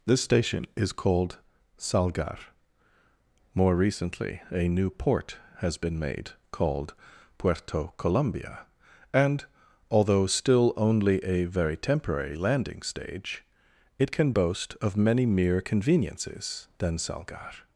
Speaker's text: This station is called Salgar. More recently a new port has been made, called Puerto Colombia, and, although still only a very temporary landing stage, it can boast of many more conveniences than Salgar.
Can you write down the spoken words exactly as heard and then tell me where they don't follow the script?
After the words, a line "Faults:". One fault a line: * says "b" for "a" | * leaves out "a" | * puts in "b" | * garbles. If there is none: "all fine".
This station is called Salgar. More recently a new port has been made, called Puerto Colombia, and, although still only a very temporary landing stage, it can boast of many mere conveniences than Salgar.
Faults:
* says "mere" for "more"